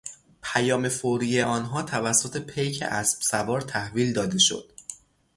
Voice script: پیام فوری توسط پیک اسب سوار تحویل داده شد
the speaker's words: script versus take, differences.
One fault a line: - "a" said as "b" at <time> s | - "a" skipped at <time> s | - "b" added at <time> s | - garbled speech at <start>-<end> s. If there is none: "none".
- "آنها" added at 1.4 s